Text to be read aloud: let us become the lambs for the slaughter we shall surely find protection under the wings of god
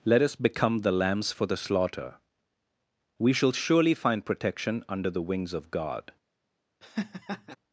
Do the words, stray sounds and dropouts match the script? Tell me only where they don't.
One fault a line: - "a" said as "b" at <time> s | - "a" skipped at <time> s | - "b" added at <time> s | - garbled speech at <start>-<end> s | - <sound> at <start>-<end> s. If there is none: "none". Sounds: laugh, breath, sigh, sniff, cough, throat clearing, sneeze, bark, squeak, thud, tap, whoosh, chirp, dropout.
- laugh at 6.8-7.6 s